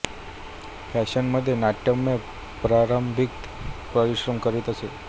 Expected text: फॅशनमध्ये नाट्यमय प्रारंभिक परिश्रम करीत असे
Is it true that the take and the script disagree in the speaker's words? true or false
false